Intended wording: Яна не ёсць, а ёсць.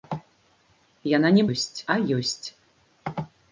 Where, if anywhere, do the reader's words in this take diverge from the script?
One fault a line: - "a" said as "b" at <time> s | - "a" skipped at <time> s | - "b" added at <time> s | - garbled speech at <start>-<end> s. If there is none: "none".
none